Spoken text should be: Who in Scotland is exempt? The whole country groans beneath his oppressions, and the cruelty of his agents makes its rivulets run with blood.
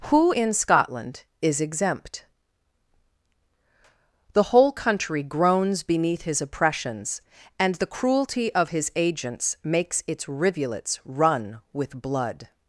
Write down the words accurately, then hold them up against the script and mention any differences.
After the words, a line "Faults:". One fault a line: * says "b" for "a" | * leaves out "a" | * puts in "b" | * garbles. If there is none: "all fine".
Who in Scotland is exempt? The whole country groans beneath his oppressions, and the cruelty of his agents makes its rivulets run with blood.
Faults:
all fine